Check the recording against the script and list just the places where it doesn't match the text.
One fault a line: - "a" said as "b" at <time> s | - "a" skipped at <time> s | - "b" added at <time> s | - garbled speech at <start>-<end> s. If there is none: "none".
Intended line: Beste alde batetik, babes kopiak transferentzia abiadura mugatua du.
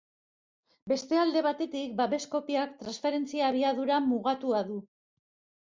none